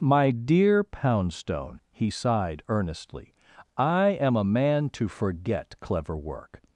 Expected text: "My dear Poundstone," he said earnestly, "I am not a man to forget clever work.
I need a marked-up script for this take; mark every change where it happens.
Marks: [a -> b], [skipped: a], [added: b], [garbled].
"My dear Poundstone," he [said -> sighed] earnestly, "I am [skipped: not] a man to forget clever work.